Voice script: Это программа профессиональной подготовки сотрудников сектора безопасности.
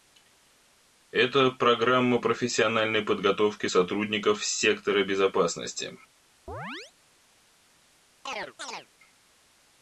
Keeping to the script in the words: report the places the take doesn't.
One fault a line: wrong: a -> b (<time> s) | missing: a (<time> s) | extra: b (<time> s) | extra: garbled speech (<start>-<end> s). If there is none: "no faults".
no faults